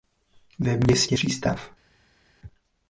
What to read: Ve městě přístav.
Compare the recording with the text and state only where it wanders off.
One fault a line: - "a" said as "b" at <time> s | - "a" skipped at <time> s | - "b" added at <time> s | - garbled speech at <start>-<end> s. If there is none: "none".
none